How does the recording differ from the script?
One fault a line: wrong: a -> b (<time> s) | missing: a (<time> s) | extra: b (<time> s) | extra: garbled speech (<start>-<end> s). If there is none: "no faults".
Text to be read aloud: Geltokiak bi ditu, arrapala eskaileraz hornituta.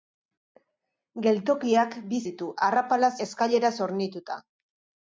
no faults